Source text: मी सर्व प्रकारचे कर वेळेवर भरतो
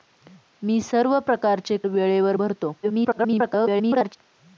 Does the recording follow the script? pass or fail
fail